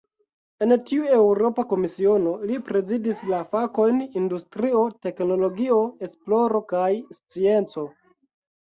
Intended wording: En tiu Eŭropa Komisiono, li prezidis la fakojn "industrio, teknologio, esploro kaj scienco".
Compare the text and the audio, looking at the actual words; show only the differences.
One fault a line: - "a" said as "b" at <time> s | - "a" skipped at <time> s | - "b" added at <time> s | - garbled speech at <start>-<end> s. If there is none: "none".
none